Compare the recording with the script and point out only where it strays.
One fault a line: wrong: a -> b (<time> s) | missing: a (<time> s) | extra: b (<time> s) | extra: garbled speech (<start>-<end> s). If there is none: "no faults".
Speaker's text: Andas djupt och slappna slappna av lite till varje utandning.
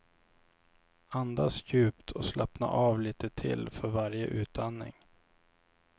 missing: slappna (2.7 s)
extra: för (3.7 s)